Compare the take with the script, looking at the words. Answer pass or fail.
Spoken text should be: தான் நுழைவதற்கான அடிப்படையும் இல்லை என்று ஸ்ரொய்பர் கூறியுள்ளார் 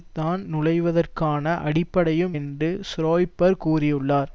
fail